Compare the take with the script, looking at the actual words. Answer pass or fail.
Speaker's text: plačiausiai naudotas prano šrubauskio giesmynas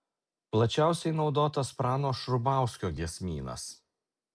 pass